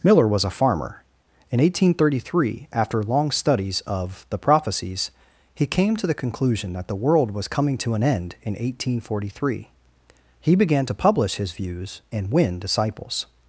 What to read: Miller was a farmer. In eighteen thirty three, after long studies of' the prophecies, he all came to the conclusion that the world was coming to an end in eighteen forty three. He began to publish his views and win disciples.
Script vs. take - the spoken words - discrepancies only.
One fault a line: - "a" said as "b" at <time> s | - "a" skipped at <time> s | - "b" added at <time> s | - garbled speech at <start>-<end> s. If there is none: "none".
- "all" skipped at 5.7 s